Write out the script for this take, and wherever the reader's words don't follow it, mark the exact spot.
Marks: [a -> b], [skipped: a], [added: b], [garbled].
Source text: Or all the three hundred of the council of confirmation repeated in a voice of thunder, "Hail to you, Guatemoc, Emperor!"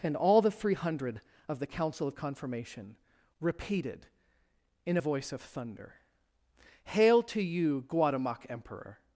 [Or -> And] all the three hundred of the council of confirmation repeated in a voice of thunder, "Hail to you, Guatemoc, Emperor!"